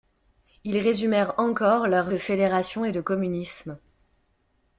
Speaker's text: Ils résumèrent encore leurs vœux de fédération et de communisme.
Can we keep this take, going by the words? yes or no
no